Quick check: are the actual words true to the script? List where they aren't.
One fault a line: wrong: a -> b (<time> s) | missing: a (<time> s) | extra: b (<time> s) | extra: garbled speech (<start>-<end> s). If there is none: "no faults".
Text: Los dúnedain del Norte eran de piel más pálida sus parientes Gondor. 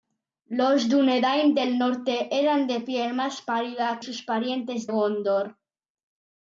no faults